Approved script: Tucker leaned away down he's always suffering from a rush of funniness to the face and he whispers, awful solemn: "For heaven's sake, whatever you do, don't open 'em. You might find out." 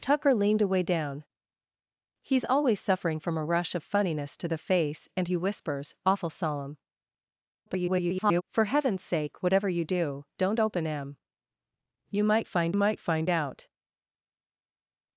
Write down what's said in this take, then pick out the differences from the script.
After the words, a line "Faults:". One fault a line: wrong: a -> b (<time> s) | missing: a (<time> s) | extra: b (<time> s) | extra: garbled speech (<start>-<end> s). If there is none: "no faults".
Tucker leaned away down he's always suffering from a rush of funniness to the face and he whispers, awful solemn: [garbled] "For heaven's sake, whatever you do, don't open 'em. You might find might find out."
Faults:
extra: garbled speech (7.7-8.4 s)
extra: might find (12.7 s)